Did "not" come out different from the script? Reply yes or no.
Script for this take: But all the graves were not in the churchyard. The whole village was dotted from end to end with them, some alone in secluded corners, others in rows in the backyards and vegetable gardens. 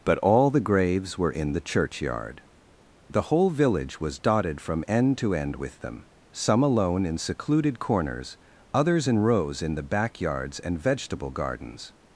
yes